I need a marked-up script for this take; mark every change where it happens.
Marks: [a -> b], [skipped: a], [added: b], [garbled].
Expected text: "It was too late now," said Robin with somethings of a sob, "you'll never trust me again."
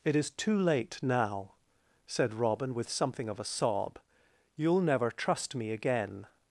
"It [was -> is] too late now," said Robin with [somethings -> something] of a sob, "you'll never trust me again."